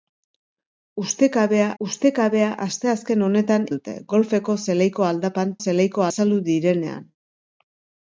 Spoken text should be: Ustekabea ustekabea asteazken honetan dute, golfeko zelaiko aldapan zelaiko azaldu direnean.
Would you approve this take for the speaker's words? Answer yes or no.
yes